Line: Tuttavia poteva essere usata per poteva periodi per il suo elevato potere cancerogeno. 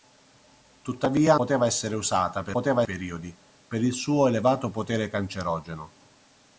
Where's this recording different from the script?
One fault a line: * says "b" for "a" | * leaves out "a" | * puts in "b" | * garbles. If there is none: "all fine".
all fine